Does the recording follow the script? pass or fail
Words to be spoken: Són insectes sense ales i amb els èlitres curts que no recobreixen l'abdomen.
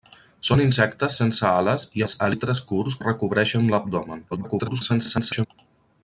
fail